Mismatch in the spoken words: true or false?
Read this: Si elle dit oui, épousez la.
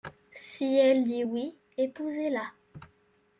false